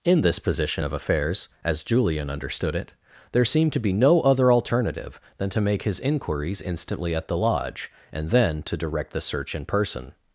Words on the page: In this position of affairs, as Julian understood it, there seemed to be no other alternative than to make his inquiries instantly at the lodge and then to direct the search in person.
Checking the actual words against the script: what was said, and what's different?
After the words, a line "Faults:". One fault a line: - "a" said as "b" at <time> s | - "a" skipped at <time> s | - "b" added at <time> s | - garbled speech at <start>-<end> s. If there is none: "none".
In this position of affairs, as Julian understood it, there seemed to be no other alternative than to make his inquiries instantly at the lodge and then to direct the search in person.
Faults:
none